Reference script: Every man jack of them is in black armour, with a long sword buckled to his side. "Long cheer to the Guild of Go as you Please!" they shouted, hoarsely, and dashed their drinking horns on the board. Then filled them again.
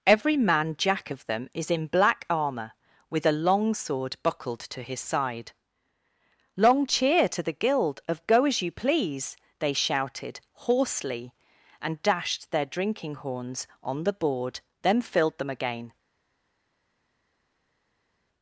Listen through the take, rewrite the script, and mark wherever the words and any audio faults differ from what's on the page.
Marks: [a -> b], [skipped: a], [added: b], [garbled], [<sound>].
Every man jack of them is in black armour, with a long sword buckled to his side. "Long cheer to the Guild of Go as you Please!" they shouted, hoarsely, and dashed their drinking horns on the board. Then filled them again.